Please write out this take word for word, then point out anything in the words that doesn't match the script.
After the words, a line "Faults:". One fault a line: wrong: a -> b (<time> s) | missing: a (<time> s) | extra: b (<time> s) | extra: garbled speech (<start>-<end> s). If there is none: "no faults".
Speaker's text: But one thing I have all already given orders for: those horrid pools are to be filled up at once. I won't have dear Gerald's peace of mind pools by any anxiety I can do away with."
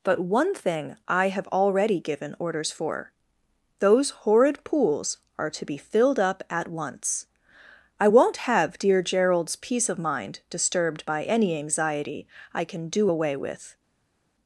But one thing I have already given orders for: those horrid pools are to be filled up at once. I won't have dear Gerald's peace of mind disturbed by any anxiety I can do away with."
Faults:
missing: all (1.5 s)
wrong: pools -> disturbed (10.5 s)